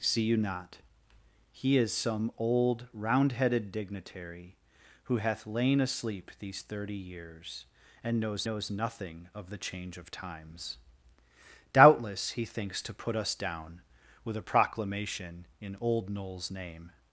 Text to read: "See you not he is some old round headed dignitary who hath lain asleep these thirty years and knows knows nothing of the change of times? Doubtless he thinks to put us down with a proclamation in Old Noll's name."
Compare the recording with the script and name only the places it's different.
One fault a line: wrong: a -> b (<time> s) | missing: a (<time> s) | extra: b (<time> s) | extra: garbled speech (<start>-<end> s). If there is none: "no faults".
no faults